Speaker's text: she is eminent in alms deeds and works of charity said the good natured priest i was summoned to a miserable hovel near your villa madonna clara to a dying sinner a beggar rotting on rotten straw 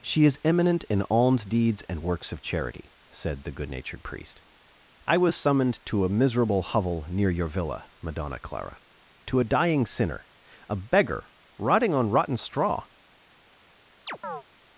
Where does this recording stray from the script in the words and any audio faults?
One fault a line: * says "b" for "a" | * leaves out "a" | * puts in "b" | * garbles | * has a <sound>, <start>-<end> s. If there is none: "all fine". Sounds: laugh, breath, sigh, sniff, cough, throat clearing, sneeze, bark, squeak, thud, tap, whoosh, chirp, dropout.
* has a chirp, 14.1-14.4 s